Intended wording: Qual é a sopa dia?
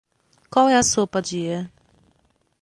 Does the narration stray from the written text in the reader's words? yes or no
no